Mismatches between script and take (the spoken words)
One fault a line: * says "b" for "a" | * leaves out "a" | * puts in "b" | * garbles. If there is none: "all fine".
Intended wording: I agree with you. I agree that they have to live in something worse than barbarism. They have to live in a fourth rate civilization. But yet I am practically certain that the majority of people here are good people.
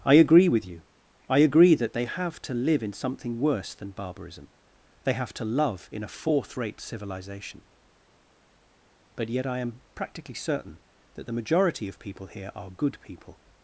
* says "love" for "live"